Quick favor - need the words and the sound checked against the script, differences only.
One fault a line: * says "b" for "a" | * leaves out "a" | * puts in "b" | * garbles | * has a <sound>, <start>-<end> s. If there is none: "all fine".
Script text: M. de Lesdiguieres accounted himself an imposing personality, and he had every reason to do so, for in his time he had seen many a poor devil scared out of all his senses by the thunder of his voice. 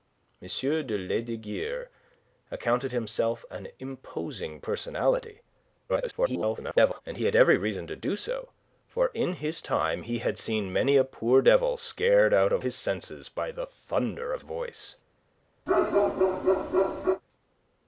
* garbles
* leaves out "all"
* leaves out "his"
* has a bark, 15.7-17.2 s